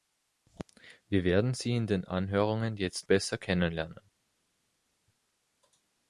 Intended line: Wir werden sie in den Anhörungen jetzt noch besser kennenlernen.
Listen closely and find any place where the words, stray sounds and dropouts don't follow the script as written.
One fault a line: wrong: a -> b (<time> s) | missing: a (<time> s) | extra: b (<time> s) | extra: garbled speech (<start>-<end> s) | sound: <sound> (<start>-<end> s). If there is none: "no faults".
missing: noch (3.1 s)